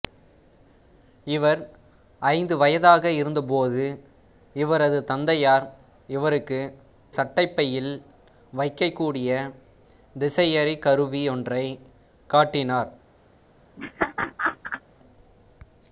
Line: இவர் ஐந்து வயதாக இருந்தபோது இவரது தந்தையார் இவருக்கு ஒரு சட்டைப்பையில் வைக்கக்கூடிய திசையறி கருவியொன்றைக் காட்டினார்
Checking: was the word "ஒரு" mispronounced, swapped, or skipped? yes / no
yes